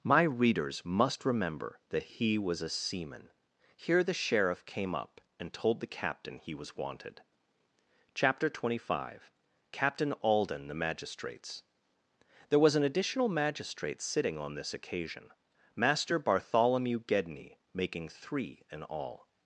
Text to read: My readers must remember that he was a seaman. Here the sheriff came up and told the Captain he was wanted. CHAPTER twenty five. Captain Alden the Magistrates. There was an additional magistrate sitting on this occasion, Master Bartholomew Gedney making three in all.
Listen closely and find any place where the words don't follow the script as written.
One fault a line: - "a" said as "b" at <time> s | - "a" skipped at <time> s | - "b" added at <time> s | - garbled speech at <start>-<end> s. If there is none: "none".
none